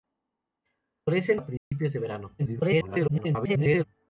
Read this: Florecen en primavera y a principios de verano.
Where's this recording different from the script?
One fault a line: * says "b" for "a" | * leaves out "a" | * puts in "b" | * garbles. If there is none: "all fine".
* leaves out "en primavera y"
* garbles